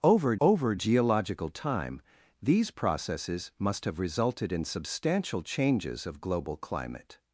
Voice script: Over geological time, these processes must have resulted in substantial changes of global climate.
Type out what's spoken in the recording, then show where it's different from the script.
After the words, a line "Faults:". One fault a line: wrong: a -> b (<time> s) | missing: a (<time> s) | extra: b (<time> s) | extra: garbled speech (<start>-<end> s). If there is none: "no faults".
Over over geological time, these processes must have resulted in substantial changes of global climate.
Faults:
extra: over (0.4 s)